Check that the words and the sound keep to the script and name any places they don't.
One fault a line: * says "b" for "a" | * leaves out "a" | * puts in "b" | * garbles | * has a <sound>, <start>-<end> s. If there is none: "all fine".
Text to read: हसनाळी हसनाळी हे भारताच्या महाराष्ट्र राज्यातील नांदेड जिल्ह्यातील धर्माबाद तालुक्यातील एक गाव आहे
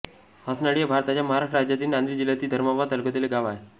* leaves out "हसनाळी"